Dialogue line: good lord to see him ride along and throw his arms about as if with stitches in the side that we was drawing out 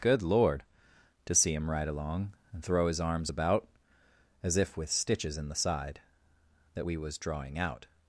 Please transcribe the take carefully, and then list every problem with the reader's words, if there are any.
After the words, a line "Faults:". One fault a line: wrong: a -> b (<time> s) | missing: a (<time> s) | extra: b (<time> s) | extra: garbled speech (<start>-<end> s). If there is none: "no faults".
good lord to see him ride along and throw his arms about as if with stitches in the side that we was drawing out
Faults:
no faults